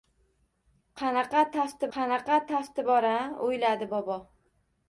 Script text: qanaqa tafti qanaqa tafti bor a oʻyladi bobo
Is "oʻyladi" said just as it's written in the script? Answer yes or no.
yes